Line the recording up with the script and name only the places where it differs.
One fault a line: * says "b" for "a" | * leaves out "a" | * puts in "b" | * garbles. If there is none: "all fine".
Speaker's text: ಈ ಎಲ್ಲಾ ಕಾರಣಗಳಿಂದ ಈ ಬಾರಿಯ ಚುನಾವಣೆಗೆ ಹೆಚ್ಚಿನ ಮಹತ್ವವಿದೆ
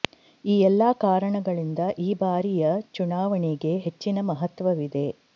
all fine